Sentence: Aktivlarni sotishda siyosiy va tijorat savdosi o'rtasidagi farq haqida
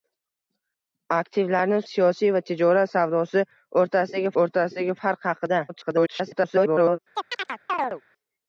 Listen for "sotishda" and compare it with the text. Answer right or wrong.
wrong